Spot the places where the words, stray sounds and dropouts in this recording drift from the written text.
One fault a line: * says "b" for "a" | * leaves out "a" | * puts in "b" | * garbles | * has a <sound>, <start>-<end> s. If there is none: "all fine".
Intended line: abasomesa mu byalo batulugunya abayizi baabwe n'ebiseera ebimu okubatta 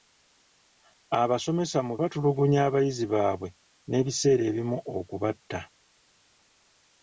* leaves out "byalo"